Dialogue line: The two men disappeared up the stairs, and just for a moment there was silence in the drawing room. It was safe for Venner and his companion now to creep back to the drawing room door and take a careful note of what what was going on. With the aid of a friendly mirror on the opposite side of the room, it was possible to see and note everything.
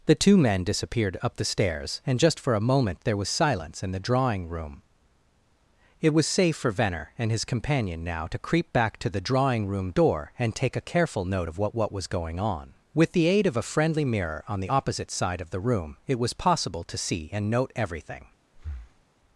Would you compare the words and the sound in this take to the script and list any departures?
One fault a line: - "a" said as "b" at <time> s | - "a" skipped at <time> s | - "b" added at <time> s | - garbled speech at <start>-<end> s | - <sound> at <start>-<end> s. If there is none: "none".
- breath at 18.5-19.0 s